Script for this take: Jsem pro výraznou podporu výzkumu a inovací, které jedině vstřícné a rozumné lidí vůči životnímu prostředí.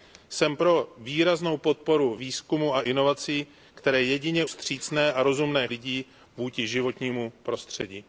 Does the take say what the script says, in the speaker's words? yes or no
yes